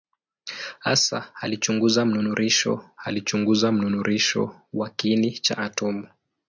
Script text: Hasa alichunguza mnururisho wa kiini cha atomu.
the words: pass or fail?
fail